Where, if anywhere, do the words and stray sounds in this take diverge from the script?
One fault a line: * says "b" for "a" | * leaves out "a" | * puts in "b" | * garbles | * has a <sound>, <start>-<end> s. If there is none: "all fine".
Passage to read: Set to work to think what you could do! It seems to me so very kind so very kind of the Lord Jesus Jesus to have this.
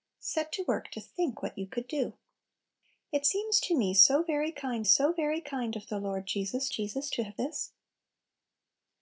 all fine